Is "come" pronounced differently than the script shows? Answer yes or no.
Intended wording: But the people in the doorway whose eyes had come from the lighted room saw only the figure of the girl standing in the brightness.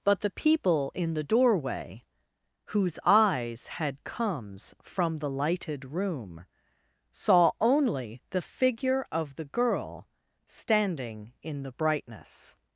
yes